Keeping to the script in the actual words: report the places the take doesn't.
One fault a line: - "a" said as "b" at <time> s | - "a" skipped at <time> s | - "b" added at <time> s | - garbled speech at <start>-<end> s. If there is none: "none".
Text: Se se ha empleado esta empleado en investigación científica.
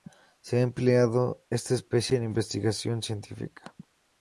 - "se" skipped at 0.6 s
- "empleado" said as "especie" at 1.7 s